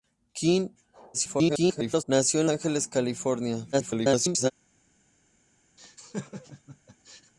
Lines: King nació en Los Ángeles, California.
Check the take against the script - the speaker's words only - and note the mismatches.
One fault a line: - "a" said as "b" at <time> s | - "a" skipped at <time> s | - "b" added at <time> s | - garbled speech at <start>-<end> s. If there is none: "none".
- garbled speech at 1.1-2.0 s
- "Los" skipped at 2.5 s
- garbled speech at 3.7-4.5 s